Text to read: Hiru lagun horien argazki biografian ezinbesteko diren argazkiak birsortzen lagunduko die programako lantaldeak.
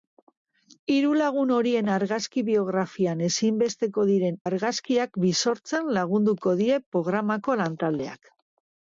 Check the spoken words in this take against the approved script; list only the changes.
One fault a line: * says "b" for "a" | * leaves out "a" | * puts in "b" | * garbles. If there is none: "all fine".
all fine